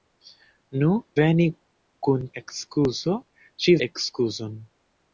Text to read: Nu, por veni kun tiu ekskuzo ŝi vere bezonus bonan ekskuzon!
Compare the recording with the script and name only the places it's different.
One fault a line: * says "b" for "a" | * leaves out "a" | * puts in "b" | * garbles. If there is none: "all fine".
* leaves out "por"
* leaves out "tiu"
* leaves out "vere bezonus bonan"